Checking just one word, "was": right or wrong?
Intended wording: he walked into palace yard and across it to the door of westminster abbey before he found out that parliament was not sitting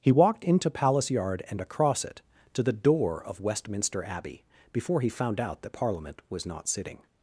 right